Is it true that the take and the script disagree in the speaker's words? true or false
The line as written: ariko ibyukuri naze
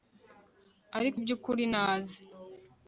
false